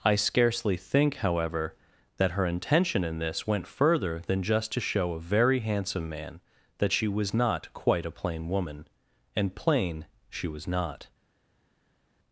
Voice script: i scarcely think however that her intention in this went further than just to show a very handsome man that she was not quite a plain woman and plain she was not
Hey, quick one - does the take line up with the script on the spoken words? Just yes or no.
yes